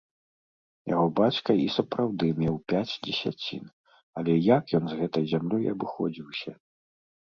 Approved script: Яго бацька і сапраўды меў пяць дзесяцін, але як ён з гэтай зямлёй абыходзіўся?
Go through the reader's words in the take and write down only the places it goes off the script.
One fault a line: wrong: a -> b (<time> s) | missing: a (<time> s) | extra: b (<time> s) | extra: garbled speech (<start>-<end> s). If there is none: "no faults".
no faults